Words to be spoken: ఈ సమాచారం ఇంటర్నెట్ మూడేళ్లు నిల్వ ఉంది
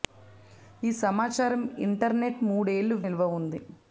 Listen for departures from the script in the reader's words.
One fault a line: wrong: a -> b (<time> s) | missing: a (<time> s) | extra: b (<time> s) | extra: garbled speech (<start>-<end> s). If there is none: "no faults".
no faults